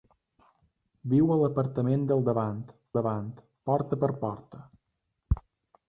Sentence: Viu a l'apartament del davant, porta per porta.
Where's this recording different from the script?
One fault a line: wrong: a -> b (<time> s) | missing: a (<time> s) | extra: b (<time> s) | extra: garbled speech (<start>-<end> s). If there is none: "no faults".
extra: davant (3.0 s)